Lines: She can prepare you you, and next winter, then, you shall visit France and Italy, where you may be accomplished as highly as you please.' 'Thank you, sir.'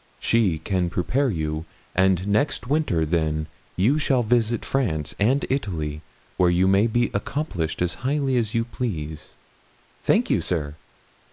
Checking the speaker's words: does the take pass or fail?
fail